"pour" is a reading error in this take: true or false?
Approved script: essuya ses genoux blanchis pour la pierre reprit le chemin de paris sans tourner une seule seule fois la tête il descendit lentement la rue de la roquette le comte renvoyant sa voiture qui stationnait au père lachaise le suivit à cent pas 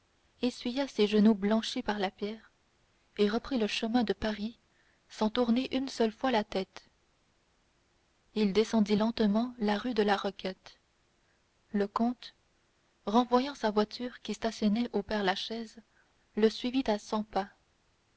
true